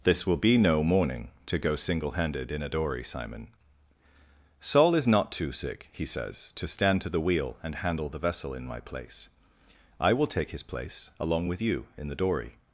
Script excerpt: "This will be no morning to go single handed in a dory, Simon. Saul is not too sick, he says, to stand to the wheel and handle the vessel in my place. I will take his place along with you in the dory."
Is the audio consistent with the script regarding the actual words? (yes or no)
yes